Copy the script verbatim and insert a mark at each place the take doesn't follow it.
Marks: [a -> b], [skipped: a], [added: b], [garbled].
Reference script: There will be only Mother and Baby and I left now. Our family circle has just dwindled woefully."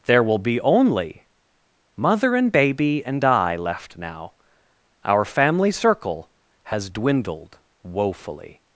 There will be only Mother and Baby and I left now. Our family circle has [skipped: just] dwindled woefully."